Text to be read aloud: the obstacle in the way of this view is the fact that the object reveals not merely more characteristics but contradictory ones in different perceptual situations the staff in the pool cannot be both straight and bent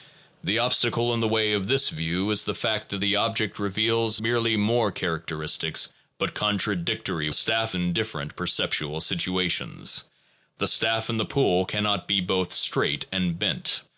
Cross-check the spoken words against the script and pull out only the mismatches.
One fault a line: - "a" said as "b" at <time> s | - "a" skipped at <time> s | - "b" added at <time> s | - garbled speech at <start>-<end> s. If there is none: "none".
- "not" skipped at 4.2 s
- "ones" said as "staff" at 7.3 s